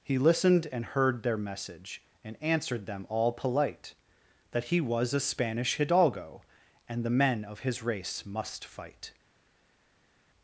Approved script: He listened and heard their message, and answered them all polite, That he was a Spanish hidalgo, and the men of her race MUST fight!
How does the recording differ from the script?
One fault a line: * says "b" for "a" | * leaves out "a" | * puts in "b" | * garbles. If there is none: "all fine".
* says "his" for "her"